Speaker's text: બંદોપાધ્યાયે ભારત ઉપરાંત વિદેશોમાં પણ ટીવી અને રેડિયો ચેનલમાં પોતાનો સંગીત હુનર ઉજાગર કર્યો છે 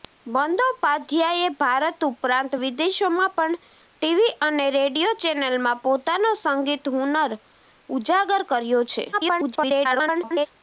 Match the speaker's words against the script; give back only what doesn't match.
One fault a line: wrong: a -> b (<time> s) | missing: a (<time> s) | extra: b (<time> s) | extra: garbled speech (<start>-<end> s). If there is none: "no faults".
extra: garbled speech (9.1-10.5 s)